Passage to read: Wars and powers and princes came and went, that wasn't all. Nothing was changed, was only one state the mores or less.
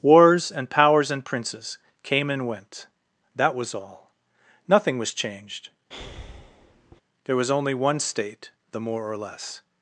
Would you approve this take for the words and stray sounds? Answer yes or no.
no